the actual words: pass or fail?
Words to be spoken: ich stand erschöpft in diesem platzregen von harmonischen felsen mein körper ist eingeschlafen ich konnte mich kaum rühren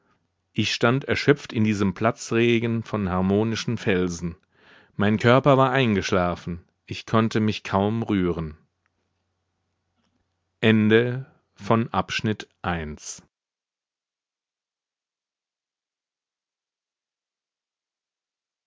fail